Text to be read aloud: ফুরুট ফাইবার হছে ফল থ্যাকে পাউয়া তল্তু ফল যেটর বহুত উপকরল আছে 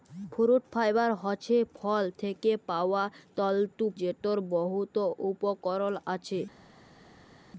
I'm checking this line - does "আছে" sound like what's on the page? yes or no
yes